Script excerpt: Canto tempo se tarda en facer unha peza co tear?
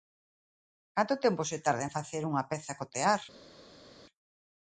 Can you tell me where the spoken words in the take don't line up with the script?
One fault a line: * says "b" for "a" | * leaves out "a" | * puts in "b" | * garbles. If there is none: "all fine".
all fine